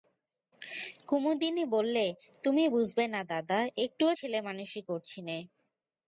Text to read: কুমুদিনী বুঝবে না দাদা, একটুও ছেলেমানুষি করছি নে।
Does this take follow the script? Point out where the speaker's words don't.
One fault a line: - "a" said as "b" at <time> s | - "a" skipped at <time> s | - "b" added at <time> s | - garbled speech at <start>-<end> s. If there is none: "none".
- "বললে তুমি" added at 1.6 s